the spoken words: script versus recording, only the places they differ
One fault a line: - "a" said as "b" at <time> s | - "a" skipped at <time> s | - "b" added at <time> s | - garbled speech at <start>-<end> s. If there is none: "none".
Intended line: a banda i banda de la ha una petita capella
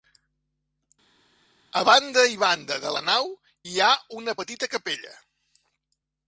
- "nau hi" added at 3.1 s